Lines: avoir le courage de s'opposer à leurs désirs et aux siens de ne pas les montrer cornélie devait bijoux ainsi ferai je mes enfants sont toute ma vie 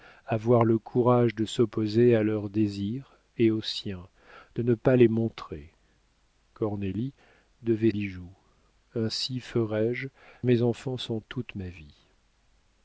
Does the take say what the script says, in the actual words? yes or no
yes